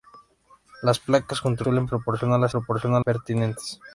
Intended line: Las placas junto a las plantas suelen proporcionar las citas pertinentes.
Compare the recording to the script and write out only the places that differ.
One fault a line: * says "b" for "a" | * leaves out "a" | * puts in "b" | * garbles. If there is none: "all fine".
* leaves out "las plantas"
* says "proporcionar" for "citas"